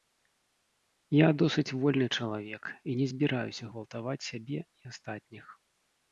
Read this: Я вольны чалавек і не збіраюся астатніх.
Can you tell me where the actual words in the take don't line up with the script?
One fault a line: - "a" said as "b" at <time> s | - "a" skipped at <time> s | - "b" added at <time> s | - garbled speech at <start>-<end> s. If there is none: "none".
- "досыць" added at 1.4 s
- "гвалтаваць сябе і" added at 3.7 s